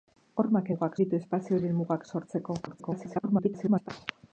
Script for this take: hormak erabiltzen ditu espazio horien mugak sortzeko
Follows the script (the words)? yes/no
no